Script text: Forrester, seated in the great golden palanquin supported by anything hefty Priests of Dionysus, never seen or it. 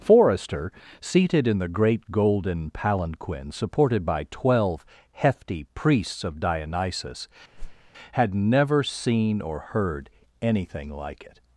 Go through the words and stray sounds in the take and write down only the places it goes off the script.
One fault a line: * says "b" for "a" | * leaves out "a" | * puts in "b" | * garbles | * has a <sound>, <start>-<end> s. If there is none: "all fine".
* says "twelve" for "anything"
* has a whoosh, 7.5-7.9 s
* puts in "had"
* puts in "heard anything like"